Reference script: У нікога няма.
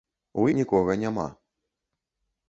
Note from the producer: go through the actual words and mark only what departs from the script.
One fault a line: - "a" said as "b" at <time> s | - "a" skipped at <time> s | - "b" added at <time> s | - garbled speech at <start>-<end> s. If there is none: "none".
none